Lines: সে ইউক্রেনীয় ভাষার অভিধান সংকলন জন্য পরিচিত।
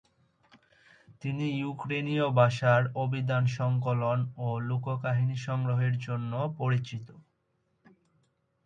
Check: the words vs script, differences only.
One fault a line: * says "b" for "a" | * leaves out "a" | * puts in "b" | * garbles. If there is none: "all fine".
* says "তিনি" for "সে"
* puts in "ও লোককাহিনী সংগ্রহের"